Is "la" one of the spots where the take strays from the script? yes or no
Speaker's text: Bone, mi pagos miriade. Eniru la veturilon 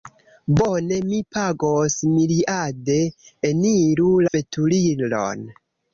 yes